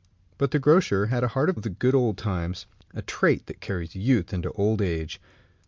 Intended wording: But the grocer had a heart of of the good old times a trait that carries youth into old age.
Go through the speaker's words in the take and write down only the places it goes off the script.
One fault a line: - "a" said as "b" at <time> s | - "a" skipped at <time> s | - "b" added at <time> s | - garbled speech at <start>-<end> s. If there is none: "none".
none